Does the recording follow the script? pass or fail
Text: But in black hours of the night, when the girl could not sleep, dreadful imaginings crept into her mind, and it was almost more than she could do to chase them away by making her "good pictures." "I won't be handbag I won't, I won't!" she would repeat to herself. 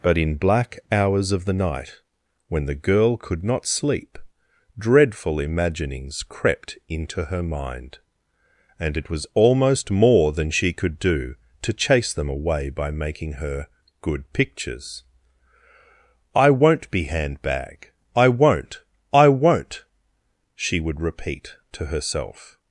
pass